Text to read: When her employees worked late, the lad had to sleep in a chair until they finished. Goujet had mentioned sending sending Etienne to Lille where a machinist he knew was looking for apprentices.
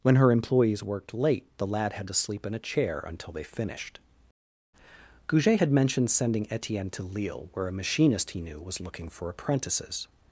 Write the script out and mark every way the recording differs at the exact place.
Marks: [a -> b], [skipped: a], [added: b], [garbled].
When her employees worked late, the lad had to sleep in a chair until they finished. Goujet had mentioned sending [skipped: sending] Etienne to Lille where a machinist he knew was looking for apprentices.